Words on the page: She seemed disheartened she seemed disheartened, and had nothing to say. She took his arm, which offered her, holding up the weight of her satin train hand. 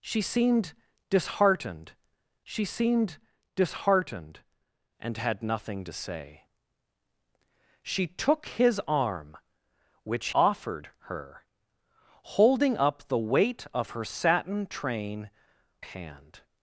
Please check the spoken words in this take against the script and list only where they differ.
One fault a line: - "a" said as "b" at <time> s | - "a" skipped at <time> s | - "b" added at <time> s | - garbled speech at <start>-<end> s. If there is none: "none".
none